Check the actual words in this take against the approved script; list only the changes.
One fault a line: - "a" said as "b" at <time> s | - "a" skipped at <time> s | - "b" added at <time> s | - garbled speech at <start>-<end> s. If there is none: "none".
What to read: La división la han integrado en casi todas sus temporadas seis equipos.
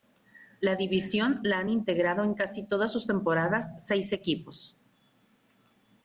none